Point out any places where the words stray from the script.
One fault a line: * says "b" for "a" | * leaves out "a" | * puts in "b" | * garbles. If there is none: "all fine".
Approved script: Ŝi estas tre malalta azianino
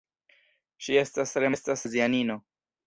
* says "estas" for "malalta"